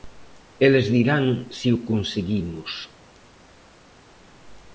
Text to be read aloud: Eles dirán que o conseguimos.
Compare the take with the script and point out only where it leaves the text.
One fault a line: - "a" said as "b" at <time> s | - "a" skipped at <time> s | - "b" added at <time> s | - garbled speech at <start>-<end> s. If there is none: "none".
- "que" said as "se" at 1.6 s